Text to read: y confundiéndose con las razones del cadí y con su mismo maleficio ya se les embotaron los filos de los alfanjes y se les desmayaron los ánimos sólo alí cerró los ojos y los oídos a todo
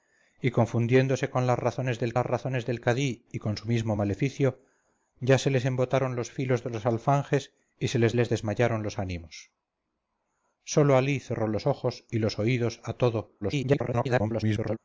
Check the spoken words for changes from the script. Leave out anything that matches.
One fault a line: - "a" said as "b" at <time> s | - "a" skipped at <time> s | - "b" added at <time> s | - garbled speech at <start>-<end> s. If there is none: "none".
- "las razones del" added at 2.1 s
- "les" added at 8.1 s
- garbled speech at 13.4-14.8 s